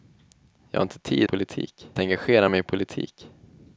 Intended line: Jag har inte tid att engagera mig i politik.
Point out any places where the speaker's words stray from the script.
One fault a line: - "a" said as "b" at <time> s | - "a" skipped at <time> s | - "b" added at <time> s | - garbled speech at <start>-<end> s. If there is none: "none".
- "att" said as "politik" at 1.2 s